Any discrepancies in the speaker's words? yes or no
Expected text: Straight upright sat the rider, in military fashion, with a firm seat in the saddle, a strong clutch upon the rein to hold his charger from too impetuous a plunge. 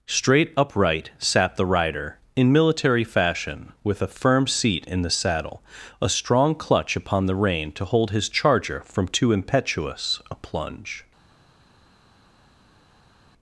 no